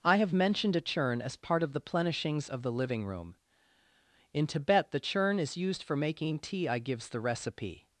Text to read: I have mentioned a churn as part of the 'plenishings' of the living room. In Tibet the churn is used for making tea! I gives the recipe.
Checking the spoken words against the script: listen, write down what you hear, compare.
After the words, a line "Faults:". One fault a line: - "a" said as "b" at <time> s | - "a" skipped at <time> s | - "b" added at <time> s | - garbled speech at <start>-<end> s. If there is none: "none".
I have mentioned a churn as part of the 'plenishings' of the living room. In Tibet the churn is used for making tea! I gives the recipe.
Faults:
none